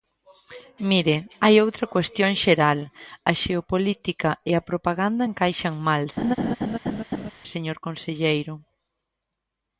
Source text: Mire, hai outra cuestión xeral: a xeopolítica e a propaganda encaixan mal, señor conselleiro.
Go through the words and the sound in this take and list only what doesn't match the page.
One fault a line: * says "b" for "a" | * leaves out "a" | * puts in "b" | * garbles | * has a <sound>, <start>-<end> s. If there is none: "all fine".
* has a laugh, 6.2-7.3 s